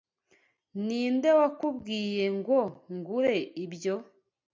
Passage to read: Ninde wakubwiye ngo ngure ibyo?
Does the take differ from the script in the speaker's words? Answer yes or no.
no